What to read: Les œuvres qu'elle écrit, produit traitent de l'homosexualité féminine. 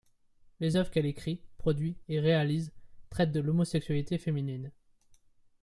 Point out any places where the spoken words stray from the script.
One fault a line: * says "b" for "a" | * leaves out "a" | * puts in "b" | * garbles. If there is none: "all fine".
* puts in "et réalise"